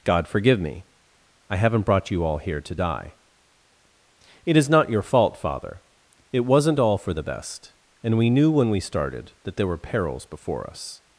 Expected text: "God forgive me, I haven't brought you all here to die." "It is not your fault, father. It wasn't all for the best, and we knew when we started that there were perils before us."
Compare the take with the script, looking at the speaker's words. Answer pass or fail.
pass